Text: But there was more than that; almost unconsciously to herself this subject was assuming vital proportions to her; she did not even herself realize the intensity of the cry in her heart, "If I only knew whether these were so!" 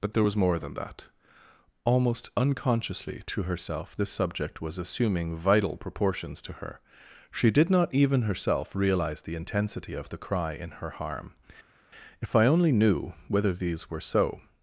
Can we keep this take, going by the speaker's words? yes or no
no